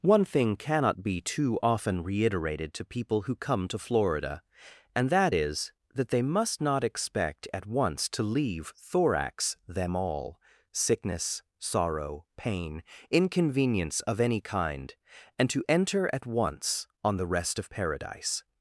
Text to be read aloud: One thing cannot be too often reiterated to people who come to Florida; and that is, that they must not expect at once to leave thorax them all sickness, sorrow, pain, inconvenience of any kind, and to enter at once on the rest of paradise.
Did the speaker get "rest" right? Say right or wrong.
right